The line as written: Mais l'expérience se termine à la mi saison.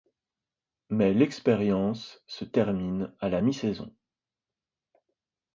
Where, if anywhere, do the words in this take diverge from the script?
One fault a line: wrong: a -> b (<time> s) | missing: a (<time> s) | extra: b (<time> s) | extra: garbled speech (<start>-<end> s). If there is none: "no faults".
no faults